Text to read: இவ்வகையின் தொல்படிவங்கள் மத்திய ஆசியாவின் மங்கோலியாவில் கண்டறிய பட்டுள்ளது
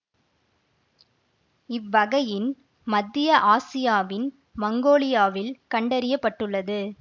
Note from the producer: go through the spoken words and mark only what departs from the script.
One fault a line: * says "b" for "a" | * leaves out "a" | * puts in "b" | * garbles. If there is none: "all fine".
* leaves out "தொல்படிவங்கள்"